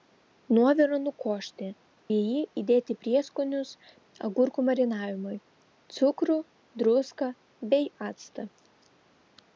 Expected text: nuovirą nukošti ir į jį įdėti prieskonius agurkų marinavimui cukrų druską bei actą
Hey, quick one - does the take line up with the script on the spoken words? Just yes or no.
no